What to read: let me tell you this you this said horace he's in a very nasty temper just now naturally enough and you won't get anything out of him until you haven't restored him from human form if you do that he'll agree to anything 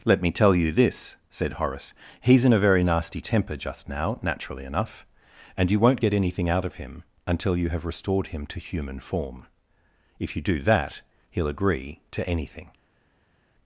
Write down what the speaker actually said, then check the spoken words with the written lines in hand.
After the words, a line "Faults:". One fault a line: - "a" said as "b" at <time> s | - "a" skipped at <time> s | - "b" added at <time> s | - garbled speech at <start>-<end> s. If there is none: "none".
let me tell you this said horace he's in a very nasty temper just now naturally enough and you won't get anything out of him until you have restored him to human form if you do that he'll agree to anything
Faults:
- "you this" skipped at 1.2 s
- "haven't" said as "have" at 7.7 s
- "from" said as "to" at 8.5 s